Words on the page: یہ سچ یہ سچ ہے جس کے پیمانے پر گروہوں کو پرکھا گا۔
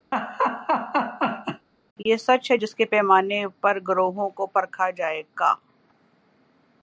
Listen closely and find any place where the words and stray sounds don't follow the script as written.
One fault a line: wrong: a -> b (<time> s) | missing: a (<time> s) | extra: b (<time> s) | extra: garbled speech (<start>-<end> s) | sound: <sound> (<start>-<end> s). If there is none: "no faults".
sound: laugh (0.1-1.7 s)
missing: یہ سچ (2.5 s)
extra: جائے (4.9 s)